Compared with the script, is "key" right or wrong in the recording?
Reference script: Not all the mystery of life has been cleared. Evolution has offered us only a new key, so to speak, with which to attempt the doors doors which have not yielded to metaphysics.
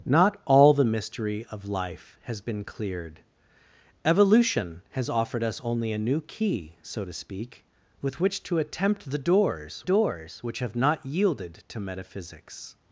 right